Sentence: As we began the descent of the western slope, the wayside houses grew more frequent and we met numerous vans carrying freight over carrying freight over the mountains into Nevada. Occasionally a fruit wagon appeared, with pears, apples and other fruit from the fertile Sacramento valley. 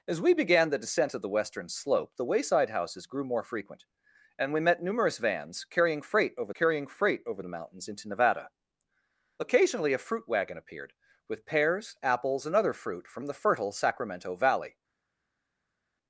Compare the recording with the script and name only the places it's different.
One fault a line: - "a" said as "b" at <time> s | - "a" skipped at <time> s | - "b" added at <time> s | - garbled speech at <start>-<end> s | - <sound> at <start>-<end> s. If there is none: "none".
none